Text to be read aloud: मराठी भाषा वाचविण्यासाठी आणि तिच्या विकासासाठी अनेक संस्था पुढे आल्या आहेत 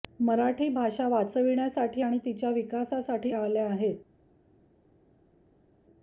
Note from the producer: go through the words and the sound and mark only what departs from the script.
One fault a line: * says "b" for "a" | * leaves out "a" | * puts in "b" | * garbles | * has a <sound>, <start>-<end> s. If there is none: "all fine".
* leaves out "अनेक संस्था पुढे"